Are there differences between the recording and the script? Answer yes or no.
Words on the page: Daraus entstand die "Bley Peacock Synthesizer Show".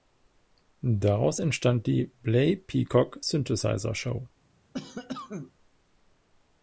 no